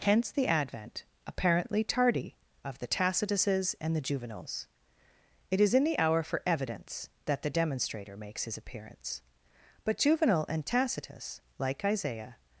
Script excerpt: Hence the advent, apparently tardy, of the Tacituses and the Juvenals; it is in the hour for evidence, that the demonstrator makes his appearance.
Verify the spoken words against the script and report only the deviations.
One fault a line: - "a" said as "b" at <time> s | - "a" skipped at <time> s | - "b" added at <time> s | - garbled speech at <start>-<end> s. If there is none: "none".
- "But Juvenal and Tacitus like Isaiah" added at 9.8 s